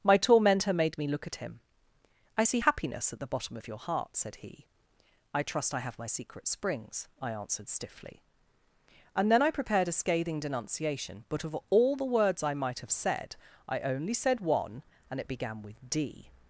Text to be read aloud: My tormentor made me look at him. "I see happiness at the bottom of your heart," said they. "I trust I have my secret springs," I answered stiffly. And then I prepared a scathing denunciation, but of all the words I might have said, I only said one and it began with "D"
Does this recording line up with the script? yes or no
no